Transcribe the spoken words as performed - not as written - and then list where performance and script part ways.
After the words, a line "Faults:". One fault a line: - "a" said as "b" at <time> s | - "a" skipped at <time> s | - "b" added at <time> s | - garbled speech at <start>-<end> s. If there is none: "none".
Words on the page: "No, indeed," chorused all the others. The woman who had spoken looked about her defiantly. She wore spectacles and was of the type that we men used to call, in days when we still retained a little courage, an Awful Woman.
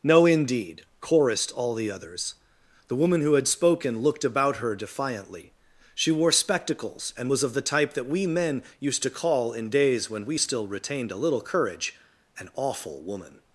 "No, indeed," chorused all the others. The woman who had spoken looked about her defiantly. She wore spectacles and was of the type that we men used to call, in days when we still retained a little courage, an Awful Woman.
Faults:
none